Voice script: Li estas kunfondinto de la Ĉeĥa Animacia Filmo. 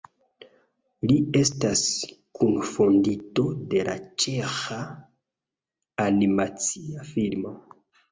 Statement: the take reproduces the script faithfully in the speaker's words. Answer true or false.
true